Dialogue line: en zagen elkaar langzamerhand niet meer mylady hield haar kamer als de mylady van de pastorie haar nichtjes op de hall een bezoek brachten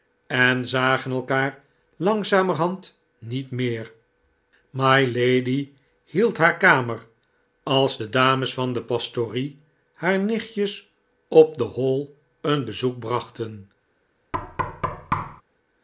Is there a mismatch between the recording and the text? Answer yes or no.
yes